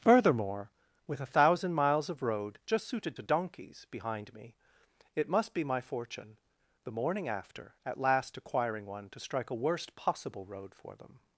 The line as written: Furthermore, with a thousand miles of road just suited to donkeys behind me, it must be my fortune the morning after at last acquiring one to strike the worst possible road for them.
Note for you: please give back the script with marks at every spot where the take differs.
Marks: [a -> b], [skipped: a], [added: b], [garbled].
Furthermore, with a thousand miles of road just suited to donkeys behind me, it must be my fortune the morning after at last acquiring one to strike [the -> a] worst possible road for them.